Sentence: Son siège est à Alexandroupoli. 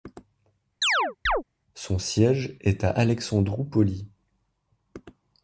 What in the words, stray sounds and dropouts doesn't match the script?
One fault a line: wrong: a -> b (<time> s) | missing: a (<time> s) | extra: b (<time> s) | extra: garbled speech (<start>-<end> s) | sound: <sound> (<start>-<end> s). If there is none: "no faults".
sound: chirp (0.8-1.4 s)